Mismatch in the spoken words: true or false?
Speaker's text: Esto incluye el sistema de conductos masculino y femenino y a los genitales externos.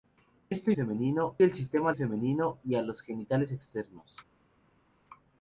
true